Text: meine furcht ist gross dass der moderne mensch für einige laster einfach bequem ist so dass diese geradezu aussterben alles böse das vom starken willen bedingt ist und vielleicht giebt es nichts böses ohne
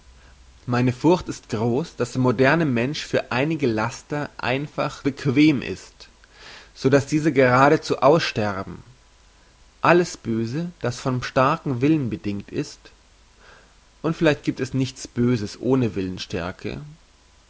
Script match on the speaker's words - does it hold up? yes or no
yes